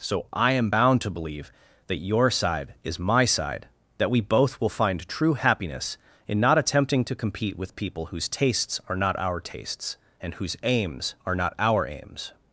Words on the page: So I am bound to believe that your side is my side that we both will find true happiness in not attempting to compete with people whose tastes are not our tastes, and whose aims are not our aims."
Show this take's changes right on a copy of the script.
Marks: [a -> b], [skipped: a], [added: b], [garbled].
So I am bound to believe that your side is my side that we both will find true happiness in not attempting to compete with people whose tastes are not our tastes, and whose aims are not our aims."